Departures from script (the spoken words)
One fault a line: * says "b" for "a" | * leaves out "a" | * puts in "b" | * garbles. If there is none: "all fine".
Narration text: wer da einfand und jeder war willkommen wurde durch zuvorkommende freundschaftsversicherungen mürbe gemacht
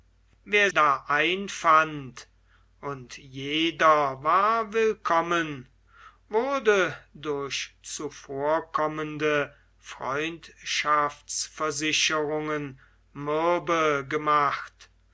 all fine